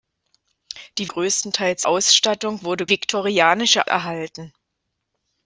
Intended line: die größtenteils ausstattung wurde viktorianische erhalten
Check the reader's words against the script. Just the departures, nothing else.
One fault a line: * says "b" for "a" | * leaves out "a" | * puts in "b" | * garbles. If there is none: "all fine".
all fine